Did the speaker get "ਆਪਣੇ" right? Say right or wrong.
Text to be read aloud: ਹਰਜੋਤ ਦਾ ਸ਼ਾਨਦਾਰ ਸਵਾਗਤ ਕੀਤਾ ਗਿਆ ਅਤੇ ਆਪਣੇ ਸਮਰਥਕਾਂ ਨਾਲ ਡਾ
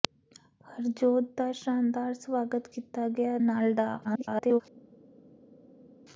wrong